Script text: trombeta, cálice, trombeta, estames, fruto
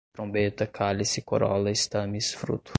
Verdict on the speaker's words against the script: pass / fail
fail